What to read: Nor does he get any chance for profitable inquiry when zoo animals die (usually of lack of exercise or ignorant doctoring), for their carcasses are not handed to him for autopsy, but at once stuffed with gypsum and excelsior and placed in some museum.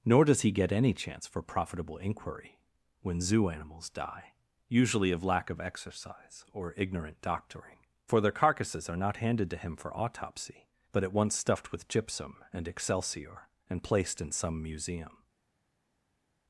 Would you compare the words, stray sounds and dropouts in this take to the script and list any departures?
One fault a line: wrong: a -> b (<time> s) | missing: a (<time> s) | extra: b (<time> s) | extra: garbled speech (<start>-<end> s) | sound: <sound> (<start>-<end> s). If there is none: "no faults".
no faults